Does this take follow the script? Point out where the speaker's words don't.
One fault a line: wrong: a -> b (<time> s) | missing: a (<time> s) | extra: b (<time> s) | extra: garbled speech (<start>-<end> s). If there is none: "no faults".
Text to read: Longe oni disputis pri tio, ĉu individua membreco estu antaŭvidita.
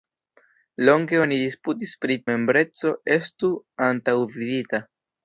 missing: tio ĉu individua (2.2 s)